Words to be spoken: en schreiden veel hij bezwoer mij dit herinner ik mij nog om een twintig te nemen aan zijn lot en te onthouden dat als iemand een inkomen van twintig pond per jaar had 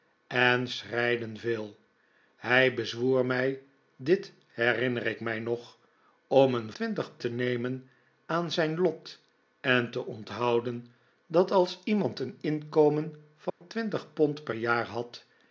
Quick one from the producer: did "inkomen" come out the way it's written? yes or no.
yes